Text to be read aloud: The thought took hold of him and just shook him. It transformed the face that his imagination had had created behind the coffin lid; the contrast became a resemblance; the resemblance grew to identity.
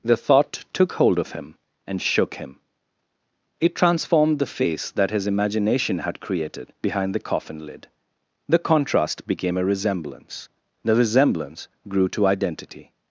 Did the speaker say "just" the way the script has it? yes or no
no